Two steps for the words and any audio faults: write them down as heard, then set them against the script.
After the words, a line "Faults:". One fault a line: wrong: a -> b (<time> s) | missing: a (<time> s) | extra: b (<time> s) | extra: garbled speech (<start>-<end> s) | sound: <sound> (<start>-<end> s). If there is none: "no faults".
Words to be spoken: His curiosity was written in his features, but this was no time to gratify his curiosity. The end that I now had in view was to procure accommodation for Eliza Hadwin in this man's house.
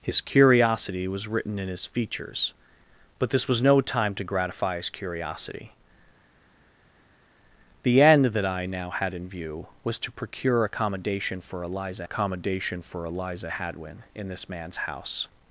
His curiosity was written in his features, but this was no time to gratify his curiosity. The end that I now had in view was to procure accommodation for Eliza accommodation for Eliza Hadwin in this man's house.
Faults:
extra: accommodation for Eliza (12.0 s)